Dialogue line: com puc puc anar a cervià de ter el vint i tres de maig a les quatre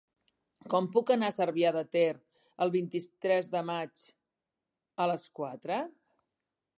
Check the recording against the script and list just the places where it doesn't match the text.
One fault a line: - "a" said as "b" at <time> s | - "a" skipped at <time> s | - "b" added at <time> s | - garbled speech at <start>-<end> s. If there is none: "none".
- "puc" skipped at 1.1 s